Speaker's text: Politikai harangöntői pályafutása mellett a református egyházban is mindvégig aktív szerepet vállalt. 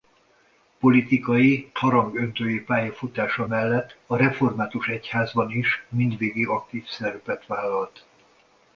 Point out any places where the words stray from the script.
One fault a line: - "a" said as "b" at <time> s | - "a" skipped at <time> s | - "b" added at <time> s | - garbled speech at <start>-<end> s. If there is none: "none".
none